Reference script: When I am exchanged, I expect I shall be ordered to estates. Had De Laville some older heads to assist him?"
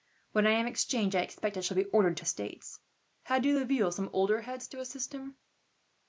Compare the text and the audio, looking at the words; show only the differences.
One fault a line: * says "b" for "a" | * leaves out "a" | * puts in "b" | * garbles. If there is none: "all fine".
all fine